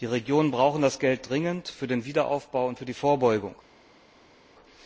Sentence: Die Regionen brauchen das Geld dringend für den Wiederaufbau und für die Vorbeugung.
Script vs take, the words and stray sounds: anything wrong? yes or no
no